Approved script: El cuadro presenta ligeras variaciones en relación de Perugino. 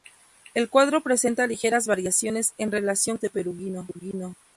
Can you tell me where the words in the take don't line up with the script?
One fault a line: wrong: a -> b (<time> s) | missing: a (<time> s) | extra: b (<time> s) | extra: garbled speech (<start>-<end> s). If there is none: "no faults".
no faults